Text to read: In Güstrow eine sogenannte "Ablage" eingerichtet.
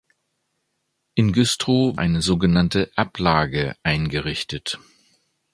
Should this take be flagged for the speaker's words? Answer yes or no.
no